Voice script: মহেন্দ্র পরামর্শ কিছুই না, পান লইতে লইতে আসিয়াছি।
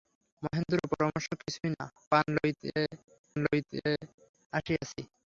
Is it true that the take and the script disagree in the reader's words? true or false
false